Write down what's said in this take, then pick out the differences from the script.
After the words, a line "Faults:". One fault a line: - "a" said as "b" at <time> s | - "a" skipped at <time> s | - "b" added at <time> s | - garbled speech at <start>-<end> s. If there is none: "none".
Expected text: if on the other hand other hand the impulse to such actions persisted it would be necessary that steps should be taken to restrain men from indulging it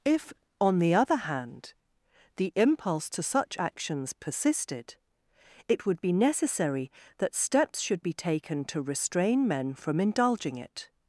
if on the other hand the impulse to such actions persisted it would be necessary that steps should be taken to restrain men from indulging it
Faults:
- "other hand" skipped at 1.7 s